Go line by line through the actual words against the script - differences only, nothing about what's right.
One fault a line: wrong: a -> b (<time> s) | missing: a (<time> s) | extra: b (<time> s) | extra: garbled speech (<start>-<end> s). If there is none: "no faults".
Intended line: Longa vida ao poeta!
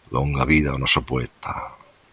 extra: noso (0.8 s)